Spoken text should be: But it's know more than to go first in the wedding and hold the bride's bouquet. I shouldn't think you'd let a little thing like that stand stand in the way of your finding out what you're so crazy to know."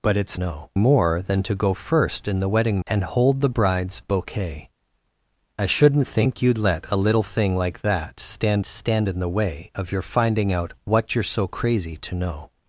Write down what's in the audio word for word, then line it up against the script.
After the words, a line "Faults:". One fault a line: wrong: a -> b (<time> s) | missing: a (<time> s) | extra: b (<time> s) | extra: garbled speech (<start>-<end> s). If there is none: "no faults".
But it's know more than to go first in the wedding and hold the bride's bouquet. I shouldn't think you'd let a little thing like that stand stand in the way of your finding out what you're so crazy to know."
Faults:
no faults